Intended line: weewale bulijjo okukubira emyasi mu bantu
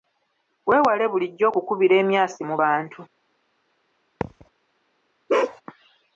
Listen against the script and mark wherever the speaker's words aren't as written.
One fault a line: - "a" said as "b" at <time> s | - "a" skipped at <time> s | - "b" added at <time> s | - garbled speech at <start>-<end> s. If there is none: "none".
none